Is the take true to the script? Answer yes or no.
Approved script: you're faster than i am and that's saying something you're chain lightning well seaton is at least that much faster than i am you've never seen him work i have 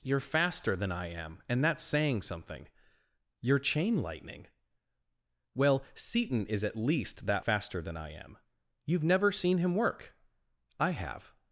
no